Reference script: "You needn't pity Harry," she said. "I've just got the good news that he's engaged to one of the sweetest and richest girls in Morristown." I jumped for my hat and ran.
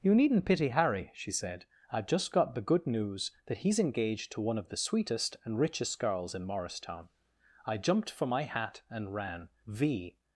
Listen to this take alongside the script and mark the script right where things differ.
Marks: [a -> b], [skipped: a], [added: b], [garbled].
"You needn't pity Harry," she said. "I've just got the good news that he's engaged to one of the sweetest and richest girls in Morristown." I jumped for my hat and ran. [added: V]